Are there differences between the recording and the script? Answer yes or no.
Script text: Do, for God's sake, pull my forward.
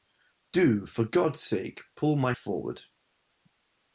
no